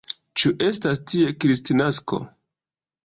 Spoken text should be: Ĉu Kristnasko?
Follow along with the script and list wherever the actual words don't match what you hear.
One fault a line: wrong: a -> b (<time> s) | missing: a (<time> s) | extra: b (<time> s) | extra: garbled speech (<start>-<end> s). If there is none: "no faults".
extra: estas tie (0.7 s)